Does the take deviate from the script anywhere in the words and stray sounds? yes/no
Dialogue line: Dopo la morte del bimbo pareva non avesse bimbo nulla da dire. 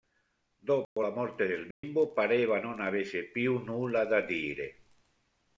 yes